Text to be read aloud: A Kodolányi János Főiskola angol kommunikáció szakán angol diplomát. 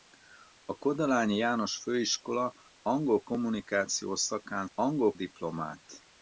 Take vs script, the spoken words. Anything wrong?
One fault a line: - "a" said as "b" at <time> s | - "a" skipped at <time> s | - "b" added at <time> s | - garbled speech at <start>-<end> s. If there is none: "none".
none